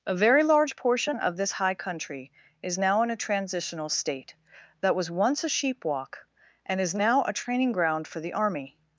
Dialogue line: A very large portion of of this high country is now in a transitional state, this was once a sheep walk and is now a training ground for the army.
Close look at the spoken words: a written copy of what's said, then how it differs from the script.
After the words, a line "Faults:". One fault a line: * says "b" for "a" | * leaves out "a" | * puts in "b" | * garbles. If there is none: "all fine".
A very large portion of this high country is now in a transitional state, that was once a sheep walk and is now a training ground for the army.
Faults:
* leaves out "of"
* says "that" for "this"